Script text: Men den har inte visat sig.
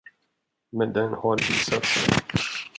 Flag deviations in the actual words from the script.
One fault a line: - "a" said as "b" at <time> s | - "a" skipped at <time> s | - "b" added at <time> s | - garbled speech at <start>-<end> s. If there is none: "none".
- "inte" skipped at 1.4 s